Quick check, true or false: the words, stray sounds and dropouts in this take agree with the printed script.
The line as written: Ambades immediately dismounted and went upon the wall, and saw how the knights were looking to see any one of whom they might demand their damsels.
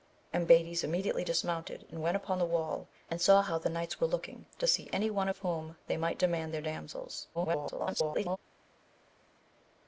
false